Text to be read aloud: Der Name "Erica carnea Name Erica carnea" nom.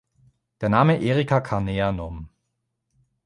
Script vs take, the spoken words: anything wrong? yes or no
yes